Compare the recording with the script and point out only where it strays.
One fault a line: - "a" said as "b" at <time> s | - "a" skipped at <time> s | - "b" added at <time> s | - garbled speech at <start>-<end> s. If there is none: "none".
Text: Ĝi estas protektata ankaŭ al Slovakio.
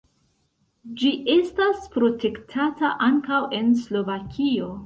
- "al" said as "en" at 3.6 s